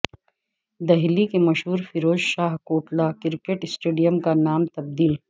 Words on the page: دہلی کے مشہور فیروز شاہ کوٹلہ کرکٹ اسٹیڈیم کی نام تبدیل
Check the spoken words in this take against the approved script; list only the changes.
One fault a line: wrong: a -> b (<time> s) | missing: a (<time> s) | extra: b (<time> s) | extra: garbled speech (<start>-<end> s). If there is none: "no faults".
wrong: کی -> کا (4.2 s)